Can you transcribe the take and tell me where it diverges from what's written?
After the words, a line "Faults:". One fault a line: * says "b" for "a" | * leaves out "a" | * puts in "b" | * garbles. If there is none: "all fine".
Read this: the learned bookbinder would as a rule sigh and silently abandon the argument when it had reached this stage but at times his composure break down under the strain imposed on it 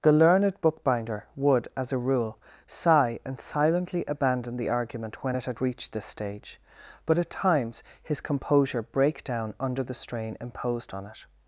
the learned bookbinder would as a rule sigh and silently abandon the argument when it had reached this stage but at times his composure break down under the strain imposed on it
Faults:
all fine